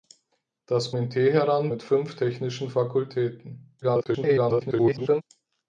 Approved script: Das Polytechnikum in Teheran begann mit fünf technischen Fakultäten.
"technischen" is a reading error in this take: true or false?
false